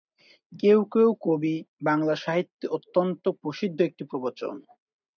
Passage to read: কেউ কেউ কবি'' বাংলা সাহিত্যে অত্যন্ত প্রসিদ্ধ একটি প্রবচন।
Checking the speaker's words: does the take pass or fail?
pass